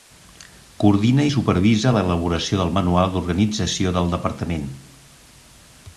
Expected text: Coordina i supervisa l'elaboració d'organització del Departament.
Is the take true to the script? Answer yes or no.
no